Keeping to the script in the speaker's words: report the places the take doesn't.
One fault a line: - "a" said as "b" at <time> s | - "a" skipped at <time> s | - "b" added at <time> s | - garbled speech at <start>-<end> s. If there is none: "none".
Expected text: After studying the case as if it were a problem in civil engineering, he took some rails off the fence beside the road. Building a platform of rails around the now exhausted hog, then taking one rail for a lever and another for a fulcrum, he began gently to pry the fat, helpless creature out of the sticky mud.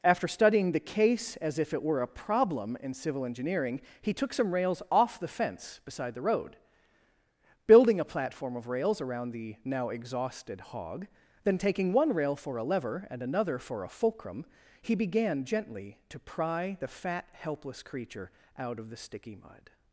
none